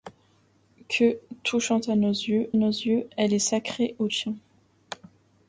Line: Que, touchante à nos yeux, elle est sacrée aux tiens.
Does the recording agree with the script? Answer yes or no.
no